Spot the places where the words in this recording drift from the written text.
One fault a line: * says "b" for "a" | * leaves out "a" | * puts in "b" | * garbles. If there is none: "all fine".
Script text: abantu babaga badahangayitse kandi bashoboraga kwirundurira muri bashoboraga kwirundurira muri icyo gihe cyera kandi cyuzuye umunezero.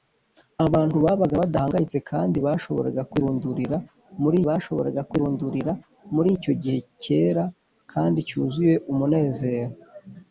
all fine